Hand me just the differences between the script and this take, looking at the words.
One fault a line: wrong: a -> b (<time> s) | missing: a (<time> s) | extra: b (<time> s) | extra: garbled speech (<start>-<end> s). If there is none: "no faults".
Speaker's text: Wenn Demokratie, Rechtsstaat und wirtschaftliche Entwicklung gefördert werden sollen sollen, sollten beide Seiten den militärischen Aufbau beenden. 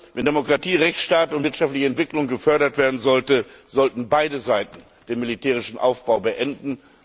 missing: sollen (3.4 s)